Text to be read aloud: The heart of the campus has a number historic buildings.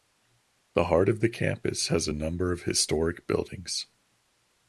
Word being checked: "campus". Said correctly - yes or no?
yes